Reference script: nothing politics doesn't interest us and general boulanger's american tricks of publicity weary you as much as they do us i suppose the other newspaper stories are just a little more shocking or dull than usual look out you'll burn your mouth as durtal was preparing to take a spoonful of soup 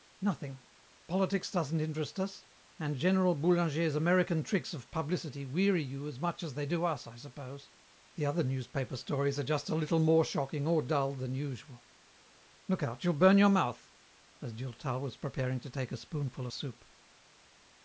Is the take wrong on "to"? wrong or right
right